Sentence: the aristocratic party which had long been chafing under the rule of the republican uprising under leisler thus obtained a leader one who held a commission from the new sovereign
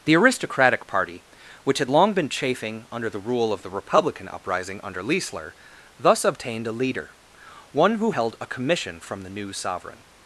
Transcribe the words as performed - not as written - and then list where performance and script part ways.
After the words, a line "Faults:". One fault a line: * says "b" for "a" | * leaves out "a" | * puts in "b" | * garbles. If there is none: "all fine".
the aristocratic party which had long been chafing under the rule of the republican uprising under leisler thus obtained a leader one who held a commission from the new sovereign
Faults:
all fine